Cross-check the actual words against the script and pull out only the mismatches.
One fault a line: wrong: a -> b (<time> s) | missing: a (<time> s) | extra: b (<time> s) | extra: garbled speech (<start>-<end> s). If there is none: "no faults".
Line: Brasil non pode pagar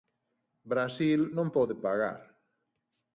no faults